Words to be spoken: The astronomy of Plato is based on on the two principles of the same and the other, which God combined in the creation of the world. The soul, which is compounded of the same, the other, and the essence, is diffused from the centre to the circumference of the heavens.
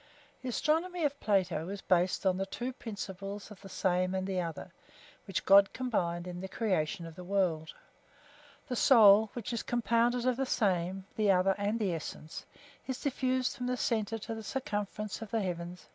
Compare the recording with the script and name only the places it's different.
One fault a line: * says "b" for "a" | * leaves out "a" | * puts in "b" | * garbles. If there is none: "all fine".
* leaves out "on"